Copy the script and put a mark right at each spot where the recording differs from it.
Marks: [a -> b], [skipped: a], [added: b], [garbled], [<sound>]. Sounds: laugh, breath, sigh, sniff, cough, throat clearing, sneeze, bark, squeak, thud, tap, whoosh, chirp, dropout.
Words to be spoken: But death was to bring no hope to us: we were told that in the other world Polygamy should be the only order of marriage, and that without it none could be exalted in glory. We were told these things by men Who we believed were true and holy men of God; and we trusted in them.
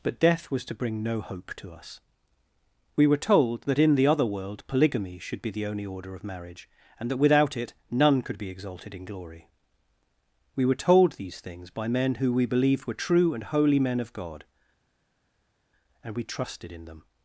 But death was to bring no hope to us: we were told that in the other world Polygamy should be the only order of marriage, and that without it none could be exalted in glory. We were told these things by men Who we believed were true and holy men of God; and we trusted in them.